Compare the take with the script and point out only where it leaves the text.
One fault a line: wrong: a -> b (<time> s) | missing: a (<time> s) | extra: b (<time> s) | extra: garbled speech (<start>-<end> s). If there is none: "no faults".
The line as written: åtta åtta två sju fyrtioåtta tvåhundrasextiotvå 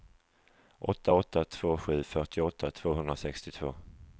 no faults